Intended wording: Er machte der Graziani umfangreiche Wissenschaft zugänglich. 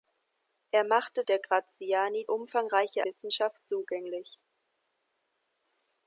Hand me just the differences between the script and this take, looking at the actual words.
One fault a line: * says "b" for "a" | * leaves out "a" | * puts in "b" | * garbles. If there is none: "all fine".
all fine